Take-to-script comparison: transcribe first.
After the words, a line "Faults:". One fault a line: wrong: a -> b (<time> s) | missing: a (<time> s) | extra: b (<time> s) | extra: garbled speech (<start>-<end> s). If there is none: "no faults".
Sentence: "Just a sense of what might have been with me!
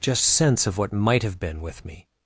"Just sense of what might have been with me!
Faults:
missing: a (0.2 s)